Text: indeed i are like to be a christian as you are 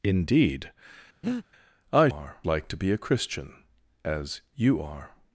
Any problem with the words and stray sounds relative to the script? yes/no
yes